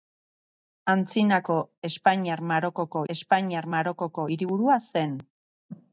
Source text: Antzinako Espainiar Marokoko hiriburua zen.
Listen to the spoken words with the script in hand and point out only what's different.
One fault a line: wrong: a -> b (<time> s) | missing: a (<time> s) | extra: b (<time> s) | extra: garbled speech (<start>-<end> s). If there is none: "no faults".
extra: Espainiar Marokoko (3.1 s)